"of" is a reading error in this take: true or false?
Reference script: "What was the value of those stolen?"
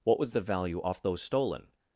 true